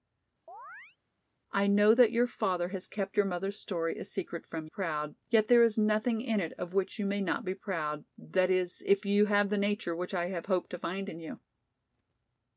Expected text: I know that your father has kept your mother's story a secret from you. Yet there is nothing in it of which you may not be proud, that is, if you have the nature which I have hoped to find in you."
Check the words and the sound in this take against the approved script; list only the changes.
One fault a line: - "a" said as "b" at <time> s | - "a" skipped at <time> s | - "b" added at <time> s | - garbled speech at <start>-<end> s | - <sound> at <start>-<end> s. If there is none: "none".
- chirp at 0.5-1.0 s
- "you" said as "proud" at 4.6 s